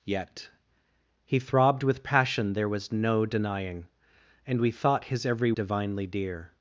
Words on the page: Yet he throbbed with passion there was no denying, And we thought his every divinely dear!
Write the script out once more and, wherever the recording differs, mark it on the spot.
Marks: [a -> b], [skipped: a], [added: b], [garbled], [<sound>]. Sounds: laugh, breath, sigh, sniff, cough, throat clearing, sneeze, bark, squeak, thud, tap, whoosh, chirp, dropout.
Yet he throbbed with passion there was no denying, And we thought his every divinely dear!